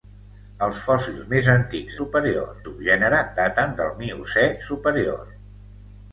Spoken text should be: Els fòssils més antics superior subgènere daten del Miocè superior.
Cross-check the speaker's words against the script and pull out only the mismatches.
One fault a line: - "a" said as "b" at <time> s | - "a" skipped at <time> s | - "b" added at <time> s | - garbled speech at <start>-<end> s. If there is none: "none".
none